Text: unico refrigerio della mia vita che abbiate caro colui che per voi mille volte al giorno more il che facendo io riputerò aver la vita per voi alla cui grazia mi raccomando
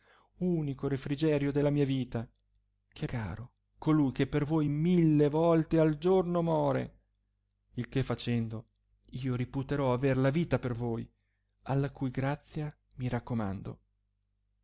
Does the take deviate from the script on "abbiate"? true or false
true